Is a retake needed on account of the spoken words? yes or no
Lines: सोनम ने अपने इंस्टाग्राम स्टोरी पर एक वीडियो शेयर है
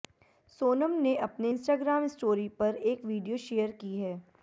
yes